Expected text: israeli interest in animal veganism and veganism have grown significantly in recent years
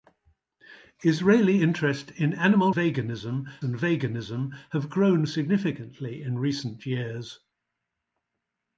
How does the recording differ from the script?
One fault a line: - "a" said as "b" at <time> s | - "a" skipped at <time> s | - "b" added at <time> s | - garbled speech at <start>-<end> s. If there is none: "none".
none